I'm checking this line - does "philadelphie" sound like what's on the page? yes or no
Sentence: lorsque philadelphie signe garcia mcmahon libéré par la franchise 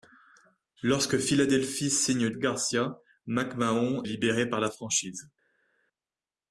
yes